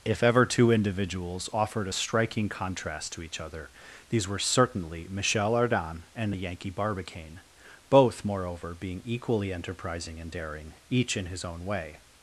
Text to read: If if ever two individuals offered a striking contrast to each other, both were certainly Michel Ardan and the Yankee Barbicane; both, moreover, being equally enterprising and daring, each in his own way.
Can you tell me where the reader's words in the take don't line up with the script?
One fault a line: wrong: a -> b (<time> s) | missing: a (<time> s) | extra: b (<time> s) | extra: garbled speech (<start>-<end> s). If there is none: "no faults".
missing: if (0.2 s)
wrong: both -> these (4.1 s)